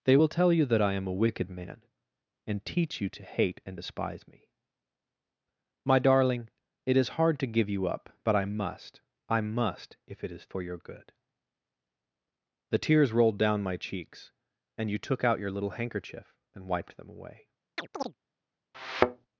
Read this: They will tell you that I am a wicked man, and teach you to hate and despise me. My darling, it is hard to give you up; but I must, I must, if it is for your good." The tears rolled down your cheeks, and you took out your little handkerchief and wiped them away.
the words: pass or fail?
fail